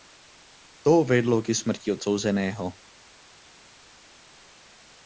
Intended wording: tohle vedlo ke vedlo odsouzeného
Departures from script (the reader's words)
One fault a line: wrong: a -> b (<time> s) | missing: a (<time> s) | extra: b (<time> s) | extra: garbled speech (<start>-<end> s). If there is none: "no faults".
wrong: tohle -> to (0.8 s)
wrong: vedlo -> smrti (1.5 s)